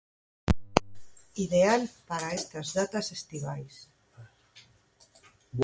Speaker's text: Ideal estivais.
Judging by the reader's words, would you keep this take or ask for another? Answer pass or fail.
fail